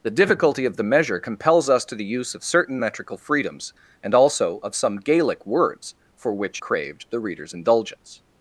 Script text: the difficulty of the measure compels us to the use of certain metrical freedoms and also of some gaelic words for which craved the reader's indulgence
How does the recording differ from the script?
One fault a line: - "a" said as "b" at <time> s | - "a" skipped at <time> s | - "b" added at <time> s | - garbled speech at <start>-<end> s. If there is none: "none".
none